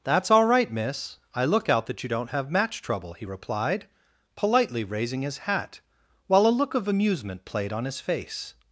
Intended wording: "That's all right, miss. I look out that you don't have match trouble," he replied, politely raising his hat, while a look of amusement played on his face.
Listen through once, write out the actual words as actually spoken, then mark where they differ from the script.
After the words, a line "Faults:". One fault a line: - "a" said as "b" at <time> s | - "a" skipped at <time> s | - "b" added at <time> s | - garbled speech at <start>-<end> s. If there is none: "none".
"That's all right, miss. I look out that you don't have match trouble," he replied, politely raising his hat, while a look of amusement played on his face.
Faults:
none